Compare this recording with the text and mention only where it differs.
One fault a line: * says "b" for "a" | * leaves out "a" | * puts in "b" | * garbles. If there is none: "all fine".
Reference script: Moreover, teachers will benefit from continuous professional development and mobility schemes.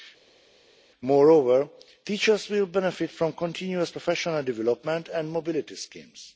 all fine